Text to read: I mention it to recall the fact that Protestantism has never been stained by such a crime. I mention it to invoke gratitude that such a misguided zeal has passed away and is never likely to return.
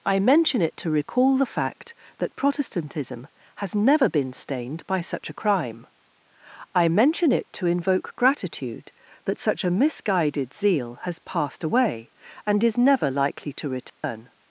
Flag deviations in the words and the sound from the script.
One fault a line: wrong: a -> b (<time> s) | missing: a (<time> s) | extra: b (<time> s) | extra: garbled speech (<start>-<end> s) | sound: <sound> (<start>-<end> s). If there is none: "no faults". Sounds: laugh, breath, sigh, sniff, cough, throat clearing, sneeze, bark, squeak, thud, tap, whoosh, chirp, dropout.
sound: dropout (13.9-14.0 s)